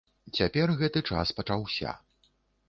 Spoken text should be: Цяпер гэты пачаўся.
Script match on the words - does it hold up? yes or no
no